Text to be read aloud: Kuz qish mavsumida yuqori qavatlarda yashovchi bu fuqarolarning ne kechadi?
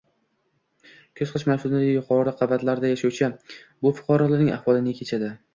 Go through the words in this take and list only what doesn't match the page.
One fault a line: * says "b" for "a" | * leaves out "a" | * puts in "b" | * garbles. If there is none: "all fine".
* puts in "ahvoli"